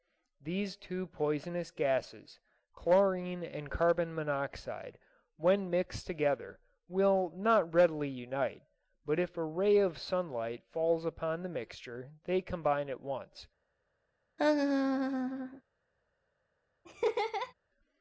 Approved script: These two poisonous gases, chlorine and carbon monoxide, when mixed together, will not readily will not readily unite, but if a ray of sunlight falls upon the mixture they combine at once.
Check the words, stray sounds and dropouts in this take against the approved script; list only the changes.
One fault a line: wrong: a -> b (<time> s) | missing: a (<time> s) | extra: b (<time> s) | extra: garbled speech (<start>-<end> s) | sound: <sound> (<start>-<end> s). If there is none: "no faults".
missing: will not readily (8.1 s)
sound: laugh (14.4-15.6 s)
sound: laugh (16.8-17.5 s)